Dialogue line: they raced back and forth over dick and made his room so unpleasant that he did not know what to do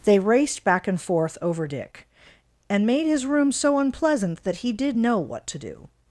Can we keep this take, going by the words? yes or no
no